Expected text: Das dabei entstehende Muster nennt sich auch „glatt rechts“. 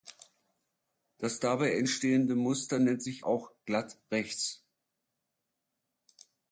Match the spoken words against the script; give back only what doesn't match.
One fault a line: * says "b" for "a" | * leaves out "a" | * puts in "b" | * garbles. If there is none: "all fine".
all fine